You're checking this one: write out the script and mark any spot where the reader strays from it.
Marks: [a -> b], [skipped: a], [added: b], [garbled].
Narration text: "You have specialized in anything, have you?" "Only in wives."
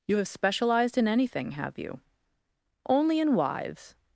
"You have specialized in anything, have you?" "Only in wives."